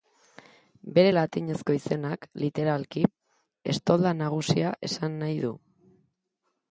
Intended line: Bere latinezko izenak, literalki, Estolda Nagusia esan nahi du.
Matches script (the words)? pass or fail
pass